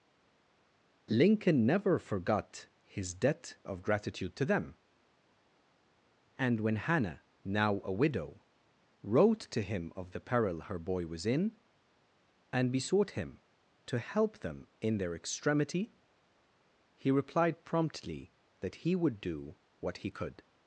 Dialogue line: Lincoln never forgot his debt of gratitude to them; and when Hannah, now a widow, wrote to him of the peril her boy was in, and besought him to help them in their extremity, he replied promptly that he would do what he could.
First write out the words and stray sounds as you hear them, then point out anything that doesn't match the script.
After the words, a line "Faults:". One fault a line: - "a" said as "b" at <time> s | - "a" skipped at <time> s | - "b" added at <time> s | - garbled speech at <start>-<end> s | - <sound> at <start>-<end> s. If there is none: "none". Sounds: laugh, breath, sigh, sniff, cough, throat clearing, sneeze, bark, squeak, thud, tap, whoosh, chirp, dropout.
Lincoln never forgot his debt of gratitude to them; and when Hannah, now a widow, wrote to him of the peril her boy was in, and besought him to help them in their extremity, he replied promptly that he would do what he could.
Faults:
none